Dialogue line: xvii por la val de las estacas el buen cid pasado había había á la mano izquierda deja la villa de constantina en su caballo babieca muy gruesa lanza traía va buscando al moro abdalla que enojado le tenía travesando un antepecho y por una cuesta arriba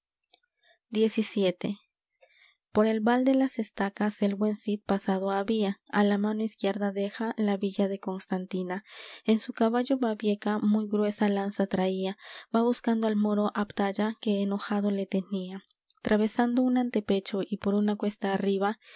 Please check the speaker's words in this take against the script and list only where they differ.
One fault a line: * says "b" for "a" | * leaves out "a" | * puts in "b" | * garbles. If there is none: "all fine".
* says "el" for "la"
* leaves out "había"